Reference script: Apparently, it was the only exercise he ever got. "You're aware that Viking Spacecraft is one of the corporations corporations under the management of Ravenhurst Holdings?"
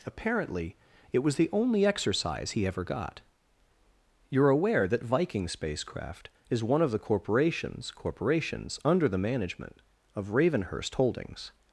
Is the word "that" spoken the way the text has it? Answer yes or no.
yes